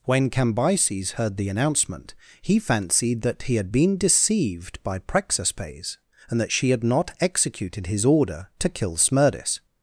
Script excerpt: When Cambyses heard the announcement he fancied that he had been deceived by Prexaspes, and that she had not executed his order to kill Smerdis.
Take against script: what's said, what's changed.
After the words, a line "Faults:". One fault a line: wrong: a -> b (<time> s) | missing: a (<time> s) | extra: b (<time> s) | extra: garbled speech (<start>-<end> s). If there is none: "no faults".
When Cambyses heard the announcement he fancied that he had been deceived by Prexaspes, and that she had not executed his order to kill Smerdis.
Faults:
no faults